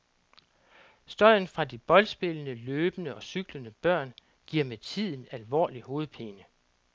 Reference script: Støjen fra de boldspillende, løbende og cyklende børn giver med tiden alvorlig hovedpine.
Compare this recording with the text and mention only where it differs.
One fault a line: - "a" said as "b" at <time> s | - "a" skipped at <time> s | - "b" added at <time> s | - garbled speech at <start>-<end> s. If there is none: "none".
none